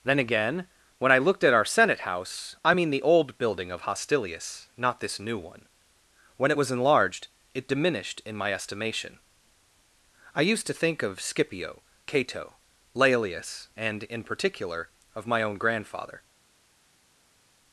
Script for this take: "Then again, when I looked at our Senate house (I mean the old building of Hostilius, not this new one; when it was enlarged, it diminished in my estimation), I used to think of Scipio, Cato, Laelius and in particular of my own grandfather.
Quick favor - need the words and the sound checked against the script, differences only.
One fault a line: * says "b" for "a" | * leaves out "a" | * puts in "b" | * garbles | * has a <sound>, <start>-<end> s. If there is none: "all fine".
all fine